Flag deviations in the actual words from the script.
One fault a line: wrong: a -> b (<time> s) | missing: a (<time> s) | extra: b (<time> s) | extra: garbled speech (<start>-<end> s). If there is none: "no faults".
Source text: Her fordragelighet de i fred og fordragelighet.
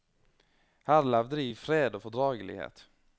wrong: fordragelighet -> levde (1.1 s)